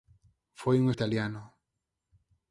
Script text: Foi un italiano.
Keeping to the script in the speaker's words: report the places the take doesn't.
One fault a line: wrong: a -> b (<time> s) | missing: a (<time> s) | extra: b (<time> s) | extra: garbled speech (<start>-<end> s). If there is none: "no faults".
no faults